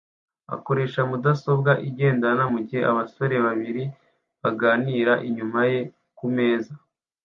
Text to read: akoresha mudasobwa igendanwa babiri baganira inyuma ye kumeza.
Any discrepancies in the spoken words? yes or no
yes